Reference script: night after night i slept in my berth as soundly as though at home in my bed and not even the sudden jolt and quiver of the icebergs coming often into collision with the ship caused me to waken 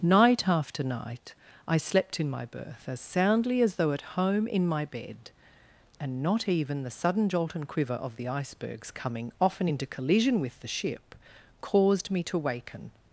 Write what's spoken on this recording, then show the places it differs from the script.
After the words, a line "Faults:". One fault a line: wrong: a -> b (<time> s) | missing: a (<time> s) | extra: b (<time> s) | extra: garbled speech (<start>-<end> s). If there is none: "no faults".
night after night i slept in my berth as soundly as though at home in my bed and not even the sudden jolt and quiver of the icebergs coming often into collision with the ship caused me to waken
Faults:
no faults